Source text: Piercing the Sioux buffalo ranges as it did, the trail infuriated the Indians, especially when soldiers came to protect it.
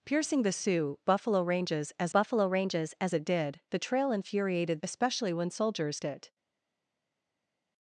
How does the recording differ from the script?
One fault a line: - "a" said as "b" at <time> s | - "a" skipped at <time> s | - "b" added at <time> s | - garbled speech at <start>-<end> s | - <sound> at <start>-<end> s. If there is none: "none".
- "buffalo ranges as" added at 2.1 s
- "the Indians" skipped at 4.8 s
- "came to protect" skipped at 6.0 s